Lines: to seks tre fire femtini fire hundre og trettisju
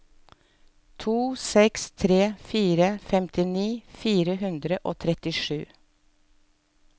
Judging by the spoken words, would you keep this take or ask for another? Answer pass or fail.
pass